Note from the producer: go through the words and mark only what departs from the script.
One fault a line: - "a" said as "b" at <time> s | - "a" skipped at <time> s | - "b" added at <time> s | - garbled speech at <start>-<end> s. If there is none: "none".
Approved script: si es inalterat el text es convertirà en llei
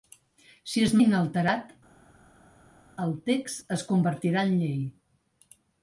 none